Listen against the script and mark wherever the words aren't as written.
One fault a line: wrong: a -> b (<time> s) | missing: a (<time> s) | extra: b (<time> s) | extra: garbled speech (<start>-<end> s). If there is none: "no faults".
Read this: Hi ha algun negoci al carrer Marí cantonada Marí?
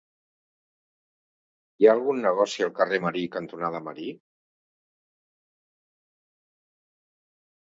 no faults